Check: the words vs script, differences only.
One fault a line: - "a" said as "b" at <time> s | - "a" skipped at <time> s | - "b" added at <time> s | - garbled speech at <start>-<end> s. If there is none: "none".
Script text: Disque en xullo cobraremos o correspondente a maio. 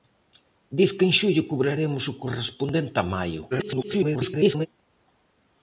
- garbled speech at 3.5-4.7 s